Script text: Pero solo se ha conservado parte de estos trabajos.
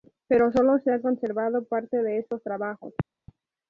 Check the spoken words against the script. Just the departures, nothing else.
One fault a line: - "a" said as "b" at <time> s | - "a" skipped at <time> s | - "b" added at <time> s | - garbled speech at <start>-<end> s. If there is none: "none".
none